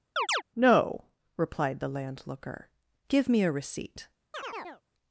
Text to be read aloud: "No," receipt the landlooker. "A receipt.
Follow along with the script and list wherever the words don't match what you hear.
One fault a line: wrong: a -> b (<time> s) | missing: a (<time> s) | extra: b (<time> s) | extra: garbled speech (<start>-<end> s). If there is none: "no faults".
wrong: receipt -> replied (1.4 s)
extra: Give me (3.1 s)